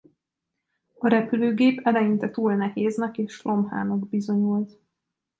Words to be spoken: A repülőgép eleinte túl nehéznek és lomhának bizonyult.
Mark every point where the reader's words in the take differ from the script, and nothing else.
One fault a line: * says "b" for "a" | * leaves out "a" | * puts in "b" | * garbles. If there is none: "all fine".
all fine